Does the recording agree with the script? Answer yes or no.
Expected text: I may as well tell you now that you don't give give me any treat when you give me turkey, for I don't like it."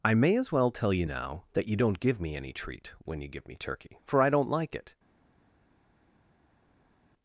no